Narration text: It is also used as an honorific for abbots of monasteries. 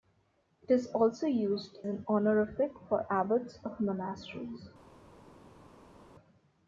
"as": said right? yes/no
no